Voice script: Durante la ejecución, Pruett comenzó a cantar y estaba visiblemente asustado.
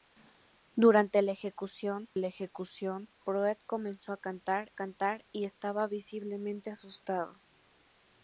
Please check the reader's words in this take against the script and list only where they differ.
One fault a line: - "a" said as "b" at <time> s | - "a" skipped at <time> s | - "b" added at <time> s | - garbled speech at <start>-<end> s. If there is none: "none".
- "la ejecución" added at 2.2 s
- "cantar" added at 4.7 s